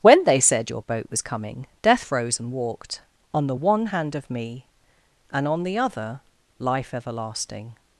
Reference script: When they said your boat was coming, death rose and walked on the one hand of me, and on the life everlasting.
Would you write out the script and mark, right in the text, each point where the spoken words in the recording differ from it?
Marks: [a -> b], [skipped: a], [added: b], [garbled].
When they said your boat was coming, death rose and walked on the one hand of me, and on the [added: other] life everlasting.